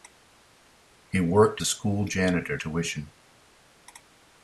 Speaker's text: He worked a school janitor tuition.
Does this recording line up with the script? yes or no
yes